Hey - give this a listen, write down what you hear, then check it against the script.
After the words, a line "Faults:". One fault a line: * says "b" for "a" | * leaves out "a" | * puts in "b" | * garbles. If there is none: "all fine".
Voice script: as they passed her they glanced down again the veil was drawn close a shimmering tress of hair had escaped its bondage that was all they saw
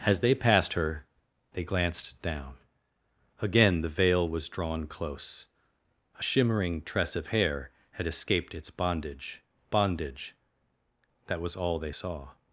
as they passed her they glanced down again the veil was drawn close a shimmering tress of hair had escaped its bondage bondage that was all they saw
Faults:
* puts in "bondage"